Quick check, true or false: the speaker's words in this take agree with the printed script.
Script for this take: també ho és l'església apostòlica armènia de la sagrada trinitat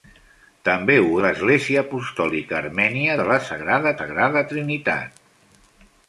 false